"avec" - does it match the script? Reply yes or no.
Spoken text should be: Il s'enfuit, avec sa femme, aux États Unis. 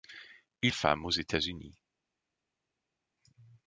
no